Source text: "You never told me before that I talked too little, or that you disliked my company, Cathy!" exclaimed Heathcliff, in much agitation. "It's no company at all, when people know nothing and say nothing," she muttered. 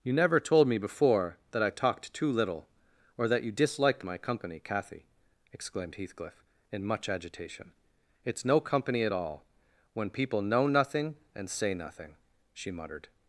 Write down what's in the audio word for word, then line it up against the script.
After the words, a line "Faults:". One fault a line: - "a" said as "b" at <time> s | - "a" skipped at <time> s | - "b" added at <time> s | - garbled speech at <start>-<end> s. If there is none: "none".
"You never told me before that I talked too little, or that you disliked my company, Cathy!" exclaimed Heathcliff, in much agitation. "It's no company at all, when people know nothing and say nothing," she muttered.
Faults:
none